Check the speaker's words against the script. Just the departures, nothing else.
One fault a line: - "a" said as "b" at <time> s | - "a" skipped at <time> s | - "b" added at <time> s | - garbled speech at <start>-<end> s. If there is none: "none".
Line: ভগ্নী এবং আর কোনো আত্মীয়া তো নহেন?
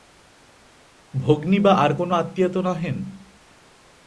- "এবং" said as "বা" at 1.6 s